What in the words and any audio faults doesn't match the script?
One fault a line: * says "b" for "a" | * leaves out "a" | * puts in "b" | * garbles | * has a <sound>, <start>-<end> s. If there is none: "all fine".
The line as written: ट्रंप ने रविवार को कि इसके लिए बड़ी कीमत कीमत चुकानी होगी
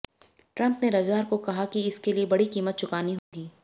* puts in "कहा"
* leaves out "कीमत"
* has a dropout, 3.2-3.3 s